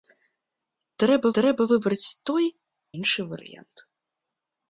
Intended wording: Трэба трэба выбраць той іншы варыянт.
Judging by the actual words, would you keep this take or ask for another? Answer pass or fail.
pass